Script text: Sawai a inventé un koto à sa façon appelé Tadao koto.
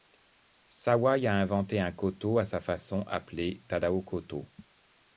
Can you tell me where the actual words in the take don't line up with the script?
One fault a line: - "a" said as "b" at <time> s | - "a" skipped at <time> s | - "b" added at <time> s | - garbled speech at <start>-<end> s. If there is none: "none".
none